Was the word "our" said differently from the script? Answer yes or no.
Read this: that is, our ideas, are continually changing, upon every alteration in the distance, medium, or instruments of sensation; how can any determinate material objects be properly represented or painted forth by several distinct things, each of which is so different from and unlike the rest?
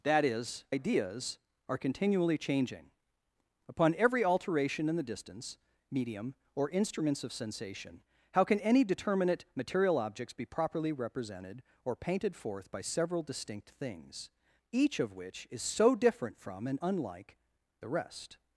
yes